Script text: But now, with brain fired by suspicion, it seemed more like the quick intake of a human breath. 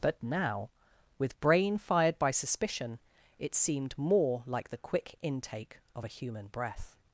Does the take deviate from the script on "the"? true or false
false